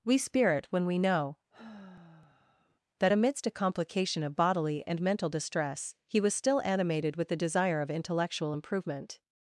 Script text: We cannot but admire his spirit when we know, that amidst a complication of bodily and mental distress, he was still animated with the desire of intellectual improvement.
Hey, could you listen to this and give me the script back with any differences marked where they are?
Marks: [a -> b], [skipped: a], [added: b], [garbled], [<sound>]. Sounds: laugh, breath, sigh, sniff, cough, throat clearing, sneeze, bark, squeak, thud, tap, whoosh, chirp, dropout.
We [skipped: cannot but admire his] spirit when we know, [sigh] that amidst a complication of bodily and mental distress, he was still animated with the desire of intellectual improvement.